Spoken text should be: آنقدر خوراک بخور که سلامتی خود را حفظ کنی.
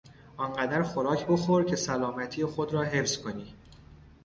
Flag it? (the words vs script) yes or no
no